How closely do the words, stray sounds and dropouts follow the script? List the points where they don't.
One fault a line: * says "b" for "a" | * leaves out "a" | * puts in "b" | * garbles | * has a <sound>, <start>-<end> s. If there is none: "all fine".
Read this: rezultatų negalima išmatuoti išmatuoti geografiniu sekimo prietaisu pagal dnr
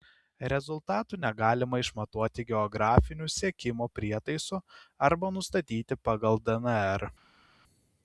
* leaves out "išmatuoti"
* puts in "arba nustatyti"